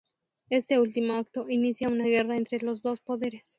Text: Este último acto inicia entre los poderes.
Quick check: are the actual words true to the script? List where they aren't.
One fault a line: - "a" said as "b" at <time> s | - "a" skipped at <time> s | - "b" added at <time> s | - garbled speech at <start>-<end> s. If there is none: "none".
- "una guerra" added at 1.9 s
- "dos" added at 2.8 s